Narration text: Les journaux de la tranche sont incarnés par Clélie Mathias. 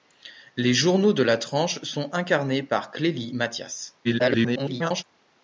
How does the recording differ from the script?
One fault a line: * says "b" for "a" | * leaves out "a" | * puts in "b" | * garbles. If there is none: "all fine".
* garbles